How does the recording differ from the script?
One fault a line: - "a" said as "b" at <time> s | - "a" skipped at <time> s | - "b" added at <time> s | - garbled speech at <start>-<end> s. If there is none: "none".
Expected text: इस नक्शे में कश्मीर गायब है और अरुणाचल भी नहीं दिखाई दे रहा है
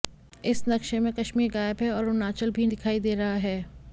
- "नहीं" skipped at 2.7 s